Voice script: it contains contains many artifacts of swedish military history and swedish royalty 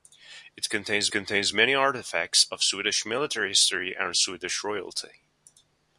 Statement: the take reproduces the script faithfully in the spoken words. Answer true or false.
true